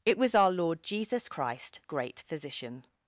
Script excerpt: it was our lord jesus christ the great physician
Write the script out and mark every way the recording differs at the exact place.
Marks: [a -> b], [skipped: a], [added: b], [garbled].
it was our lord jesus christ [skipped: the] great physician